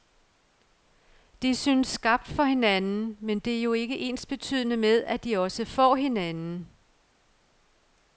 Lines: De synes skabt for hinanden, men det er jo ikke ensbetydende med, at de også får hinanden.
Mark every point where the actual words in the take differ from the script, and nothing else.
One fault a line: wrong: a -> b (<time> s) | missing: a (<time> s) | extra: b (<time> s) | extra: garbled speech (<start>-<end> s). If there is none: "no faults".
no faults